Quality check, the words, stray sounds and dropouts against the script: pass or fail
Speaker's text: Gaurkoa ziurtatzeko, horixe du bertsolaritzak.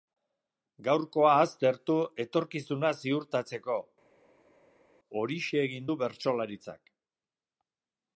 fail